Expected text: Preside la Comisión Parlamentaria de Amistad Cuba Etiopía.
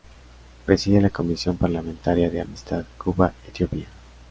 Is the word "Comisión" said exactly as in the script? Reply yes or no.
yes